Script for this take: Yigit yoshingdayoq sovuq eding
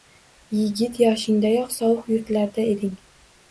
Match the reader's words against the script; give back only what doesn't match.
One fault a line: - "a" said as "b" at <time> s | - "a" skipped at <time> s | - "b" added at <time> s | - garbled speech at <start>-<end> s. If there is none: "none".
- "yurtlarda" added at 2.2 s